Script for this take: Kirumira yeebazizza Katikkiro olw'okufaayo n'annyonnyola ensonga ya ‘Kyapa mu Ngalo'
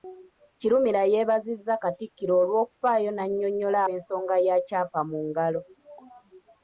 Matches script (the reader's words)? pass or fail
pass